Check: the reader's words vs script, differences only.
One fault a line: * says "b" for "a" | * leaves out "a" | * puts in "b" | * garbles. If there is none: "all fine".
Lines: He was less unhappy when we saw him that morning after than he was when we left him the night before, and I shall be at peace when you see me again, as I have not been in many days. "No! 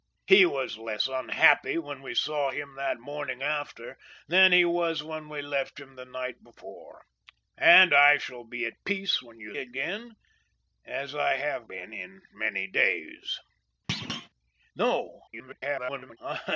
* leaves out "see me"
* leaves out "not"
* garbles